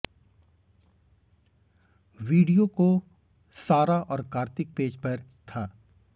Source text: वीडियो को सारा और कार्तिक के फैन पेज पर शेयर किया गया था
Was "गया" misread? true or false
true